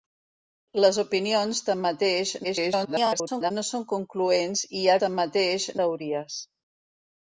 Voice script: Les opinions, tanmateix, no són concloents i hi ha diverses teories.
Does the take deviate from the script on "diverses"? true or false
true